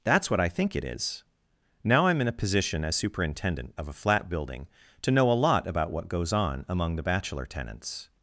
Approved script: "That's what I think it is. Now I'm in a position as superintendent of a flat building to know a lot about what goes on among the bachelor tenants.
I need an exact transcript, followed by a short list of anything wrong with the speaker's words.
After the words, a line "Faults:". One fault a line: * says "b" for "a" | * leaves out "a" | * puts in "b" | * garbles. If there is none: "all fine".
"That's what I think it is. Now I'm in a position as superintendent of a flat building to know a lot about what goes on among the bachelor tenants.
Faults:
all fine